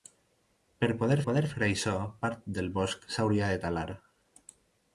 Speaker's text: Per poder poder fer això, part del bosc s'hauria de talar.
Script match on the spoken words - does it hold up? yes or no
yes